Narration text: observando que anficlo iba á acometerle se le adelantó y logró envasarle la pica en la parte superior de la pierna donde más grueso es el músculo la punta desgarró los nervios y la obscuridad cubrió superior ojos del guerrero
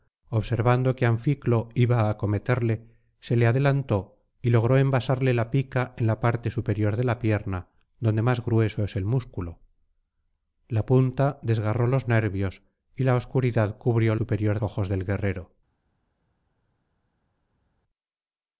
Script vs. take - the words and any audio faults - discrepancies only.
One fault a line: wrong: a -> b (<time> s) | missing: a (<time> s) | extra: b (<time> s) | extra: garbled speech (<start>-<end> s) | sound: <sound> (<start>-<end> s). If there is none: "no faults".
no faults